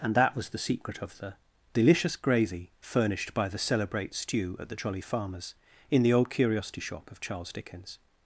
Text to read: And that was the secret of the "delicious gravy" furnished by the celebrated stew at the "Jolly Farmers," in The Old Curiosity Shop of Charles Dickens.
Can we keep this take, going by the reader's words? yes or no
no